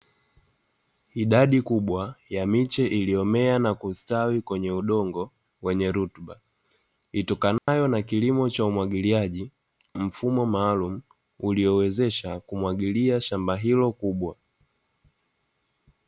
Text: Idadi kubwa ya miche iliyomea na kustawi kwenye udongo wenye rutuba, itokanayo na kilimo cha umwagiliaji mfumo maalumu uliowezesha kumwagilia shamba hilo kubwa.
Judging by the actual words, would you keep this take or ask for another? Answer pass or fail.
pass